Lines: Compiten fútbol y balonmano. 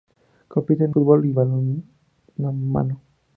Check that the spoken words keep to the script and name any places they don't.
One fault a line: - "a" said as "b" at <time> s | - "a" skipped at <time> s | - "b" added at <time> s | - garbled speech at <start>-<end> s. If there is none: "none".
none